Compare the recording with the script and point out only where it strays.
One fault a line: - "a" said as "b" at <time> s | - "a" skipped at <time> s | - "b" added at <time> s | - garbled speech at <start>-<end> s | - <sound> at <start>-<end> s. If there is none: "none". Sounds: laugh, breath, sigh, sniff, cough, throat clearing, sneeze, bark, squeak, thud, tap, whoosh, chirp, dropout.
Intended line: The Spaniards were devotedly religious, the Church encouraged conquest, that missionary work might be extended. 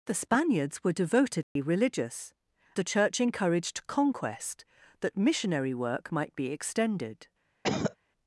- dropout at 1.4-1.6 s
- cough at 7.6-8.0 s